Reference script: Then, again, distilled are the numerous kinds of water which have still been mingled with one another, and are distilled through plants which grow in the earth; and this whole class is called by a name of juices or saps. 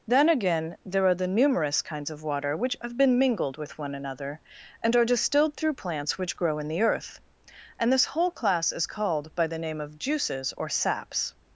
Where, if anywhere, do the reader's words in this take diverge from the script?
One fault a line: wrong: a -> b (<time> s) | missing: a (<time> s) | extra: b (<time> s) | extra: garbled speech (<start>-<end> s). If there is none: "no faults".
wrong: distilled -> there (0.8 s)
missing: still (3.0 s)
wrong: a -> the (9.4 s)